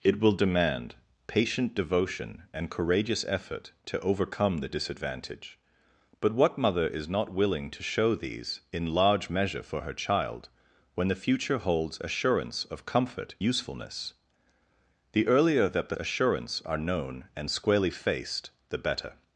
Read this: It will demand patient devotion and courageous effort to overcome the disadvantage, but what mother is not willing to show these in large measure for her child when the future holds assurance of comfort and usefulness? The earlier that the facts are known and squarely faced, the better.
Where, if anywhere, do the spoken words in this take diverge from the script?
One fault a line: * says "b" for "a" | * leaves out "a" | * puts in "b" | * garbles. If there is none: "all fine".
* leaves out "and"
* says "assurance" for "facts"